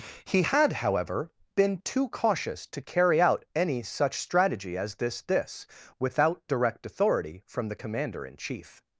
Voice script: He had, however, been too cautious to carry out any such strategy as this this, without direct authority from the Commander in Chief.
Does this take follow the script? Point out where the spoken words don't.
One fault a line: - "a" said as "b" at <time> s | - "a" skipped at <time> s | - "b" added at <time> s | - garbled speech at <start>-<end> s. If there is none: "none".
none